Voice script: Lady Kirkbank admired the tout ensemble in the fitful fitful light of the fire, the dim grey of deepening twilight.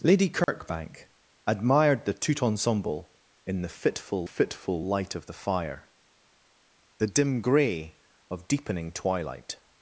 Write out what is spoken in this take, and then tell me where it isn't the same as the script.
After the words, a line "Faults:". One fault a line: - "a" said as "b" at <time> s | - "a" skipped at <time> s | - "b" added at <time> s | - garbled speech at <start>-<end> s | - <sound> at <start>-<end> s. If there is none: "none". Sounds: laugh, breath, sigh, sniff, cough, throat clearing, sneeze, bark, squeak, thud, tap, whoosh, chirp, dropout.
Lady Kirkbank admired the tout ensemble in the fitful fitful light of the fire, the dim grey of deepening twilight.
Faults:
- dropout at 0.4-0.5 s